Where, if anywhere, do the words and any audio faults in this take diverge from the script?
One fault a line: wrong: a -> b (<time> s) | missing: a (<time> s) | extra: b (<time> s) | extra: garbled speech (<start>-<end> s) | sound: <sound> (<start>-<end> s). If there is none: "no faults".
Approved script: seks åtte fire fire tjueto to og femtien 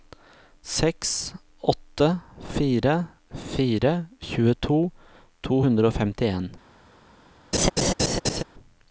extra: hundre (5.7 s)
sound: laugh (7.5-8.4 s)